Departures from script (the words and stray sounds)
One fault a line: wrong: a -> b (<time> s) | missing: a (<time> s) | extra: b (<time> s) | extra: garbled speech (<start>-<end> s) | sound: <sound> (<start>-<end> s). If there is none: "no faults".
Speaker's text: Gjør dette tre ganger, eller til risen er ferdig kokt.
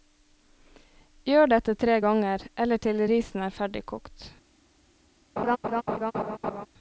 sound: laugh (5.4-6.7 s)